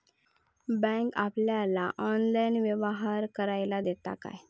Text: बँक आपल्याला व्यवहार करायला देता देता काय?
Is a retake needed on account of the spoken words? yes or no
yes